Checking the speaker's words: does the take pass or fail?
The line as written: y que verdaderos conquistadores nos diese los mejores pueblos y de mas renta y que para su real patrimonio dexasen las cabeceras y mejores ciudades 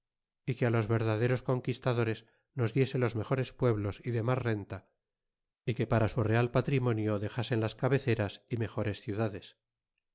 fail